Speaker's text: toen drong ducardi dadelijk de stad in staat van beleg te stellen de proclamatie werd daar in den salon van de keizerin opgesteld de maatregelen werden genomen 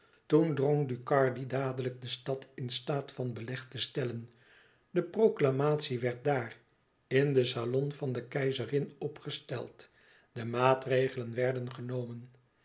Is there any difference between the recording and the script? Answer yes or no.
no